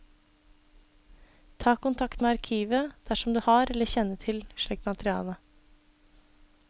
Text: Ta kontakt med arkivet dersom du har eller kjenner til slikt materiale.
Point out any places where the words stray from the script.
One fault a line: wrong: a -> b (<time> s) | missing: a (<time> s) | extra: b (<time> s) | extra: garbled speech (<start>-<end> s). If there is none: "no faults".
no faults